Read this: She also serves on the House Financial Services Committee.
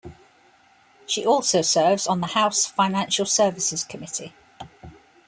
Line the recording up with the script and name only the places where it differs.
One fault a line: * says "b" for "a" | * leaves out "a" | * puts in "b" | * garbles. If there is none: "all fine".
all fine